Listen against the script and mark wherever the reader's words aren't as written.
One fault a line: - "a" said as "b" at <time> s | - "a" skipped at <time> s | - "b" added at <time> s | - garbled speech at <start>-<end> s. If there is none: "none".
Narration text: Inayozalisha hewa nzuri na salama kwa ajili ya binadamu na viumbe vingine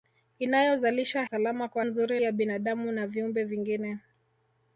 - "hewa nzuri na" skipped at 1.2 s
- "ajili" said as "nzuri" at 1.8 s